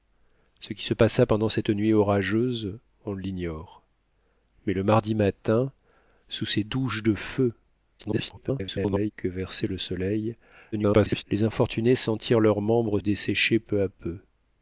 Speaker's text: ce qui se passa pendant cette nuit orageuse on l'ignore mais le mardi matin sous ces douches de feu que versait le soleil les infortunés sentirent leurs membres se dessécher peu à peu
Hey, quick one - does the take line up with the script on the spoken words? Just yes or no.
no